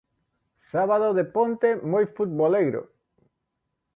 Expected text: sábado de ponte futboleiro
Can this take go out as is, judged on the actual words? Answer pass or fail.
fail